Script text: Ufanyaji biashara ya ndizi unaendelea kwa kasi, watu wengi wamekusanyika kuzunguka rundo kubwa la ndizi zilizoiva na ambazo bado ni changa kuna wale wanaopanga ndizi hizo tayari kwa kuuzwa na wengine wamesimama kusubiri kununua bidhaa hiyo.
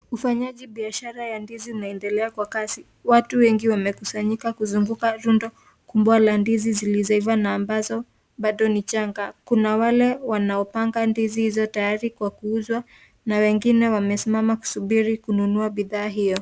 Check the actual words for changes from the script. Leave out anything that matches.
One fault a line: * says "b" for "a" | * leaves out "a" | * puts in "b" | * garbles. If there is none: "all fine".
all fine